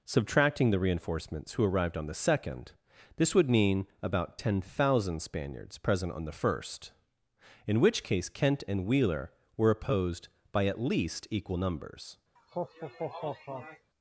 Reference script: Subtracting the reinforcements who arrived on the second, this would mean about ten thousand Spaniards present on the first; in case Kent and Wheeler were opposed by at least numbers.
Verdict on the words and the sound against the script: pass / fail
fail